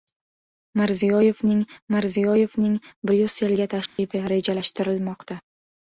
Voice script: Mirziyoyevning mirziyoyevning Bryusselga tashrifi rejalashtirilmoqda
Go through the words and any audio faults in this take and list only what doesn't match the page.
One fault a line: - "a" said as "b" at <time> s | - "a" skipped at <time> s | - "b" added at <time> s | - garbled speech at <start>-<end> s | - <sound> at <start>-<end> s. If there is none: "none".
- dropout at 3.9-4.0 s